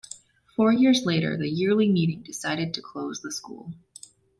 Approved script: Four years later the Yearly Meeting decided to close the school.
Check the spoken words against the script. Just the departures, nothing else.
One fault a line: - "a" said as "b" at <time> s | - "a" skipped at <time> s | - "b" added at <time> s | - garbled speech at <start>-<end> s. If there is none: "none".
none